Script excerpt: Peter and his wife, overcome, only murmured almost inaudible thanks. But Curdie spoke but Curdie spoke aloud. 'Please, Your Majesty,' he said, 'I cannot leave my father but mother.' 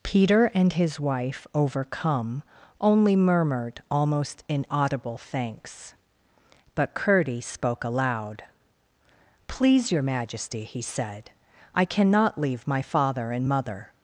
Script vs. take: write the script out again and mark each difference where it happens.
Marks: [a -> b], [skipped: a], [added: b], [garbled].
Peter and his wife, overcome, only murmured almost inaudible thanks. But Curdie spoke [skipped: but Curdie spoke] aloud. 'Please, Your Majesty,' he said, 'I cannot leave my father [but -> and] mother.'